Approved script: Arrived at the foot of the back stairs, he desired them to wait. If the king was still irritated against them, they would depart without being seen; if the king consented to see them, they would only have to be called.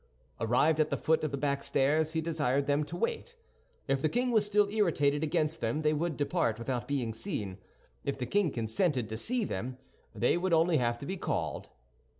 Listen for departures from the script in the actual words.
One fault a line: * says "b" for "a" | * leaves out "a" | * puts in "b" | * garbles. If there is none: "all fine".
all fine